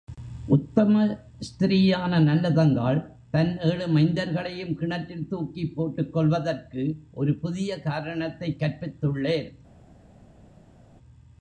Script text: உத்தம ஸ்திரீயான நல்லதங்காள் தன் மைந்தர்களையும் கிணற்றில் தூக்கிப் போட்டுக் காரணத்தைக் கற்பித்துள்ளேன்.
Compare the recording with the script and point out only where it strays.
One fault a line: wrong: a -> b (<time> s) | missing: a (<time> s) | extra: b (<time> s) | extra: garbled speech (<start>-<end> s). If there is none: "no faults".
extra: ஏழு (3.6 s)
extra: கொல்வதற்கு ஒரு புதிய (6.1 s)